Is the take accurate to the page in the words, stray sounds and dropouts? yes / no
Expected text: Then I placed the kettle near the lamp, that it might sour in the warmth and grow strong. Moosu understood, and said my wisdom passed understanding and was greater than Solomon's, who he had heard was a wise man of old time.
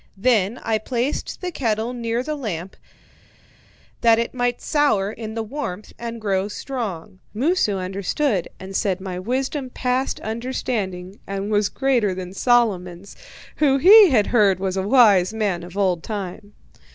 yes